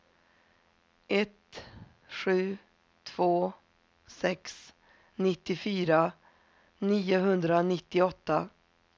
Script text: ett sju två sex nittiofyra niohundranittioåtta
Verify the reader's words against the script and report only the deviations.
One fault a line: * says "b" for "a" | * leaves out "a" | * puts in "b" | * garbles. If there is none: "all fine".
all fine